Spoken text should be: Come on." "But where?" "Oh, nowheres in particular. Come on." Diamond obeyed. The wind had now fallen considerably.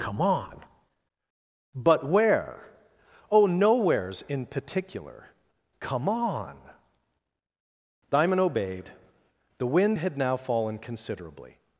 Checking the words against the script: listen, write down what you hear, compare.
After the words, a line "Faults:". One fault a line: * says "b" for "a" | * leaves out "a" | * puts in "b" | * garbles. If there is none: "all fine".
Come on." "But where?" "Oh, nowheres in particular. Come on." Diamond obeyed. The wind had now fallen considerably.
Faults:
all fine